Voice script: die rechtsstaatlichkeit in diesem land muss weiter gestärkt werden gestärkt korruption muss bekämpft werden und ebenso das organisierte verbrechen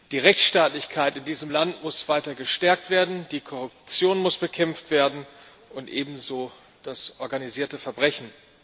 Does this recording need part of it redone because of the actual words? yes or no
yes